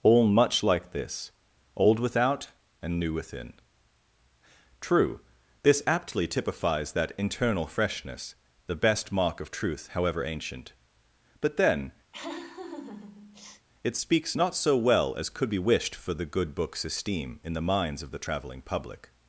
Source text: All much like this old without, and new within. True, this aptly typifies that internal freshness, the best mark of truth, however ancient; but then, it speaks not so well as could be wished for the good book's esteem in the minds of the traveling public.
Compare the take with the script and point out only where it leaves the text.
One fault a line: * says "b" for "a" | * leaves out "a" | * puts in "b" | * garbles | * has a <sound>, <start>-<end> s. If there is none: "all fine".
* has a laugh, 12.1-13.7 s